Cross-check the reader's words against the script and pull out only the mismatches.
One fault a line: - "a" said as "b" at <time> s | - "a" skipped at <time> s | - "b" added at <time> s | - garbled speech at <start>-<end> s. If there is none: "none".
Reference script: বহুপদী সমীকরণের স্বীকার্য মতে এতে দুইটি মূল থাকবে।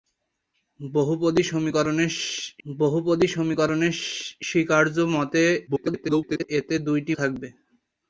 - "বহুপদী সমীকরণের" added at 2.6 s
- garbled speech at 5.7-6.5 s
- "মূল" skipped at 7.1 s